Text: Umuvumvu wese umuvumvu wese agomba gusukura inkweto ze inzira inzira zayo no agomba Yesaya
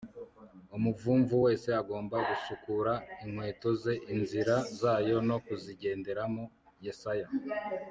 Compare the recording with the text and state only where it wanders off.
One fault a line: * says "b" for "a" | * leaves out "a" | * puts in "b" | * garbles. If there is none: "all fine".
* leaves out "umuvumvu wese"
* leaves out "inzira"
* says "kuzigenderamo" for "agomba"